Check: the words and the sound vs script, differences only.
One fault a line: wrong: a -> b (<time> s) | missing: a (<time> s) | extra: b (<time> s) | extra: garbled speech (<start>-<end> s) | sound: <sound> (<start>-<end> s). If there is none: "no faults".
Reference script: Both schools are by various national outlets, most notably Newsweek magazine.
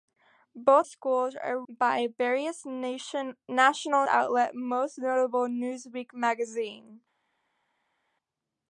no faults